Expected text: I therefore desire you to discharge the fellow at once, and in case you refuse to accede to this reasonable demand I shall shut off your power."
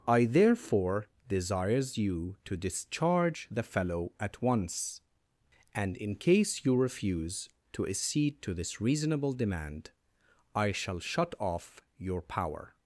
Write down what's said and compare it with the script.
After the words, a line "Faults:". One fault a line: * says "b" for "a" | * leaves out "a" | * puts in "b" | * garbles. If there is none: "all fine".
I therefore desires you to discharge the fellow at once, and in case you refuse to accede to this reasonable demand I shall shut off your power."
Faults:
* says "desires" for "desire"